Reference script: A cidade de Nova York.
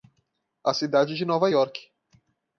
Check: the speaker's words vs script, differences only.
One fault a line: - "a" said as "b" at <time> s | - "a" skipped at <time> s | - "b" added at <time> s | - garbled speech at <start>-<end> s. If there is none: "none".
none